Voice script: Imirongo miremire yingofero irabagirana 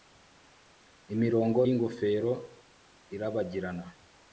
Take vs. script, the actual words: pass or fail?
fail